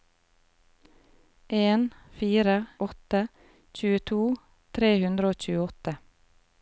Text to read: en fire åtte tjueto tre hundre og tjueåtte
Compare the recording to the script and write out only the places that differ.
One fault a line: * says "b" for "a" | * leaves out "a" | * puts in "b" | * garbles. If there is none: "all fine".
all fine